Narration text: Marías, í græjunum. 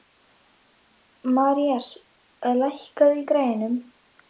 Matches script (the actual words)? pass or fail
fail